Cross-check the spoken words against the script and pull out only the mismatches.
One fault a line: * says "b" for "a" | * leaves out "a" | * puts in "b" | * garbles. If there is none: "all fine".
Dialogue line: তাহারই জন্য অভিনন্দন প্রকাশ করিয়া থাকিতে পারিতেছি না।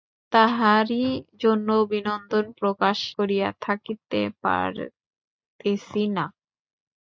all fine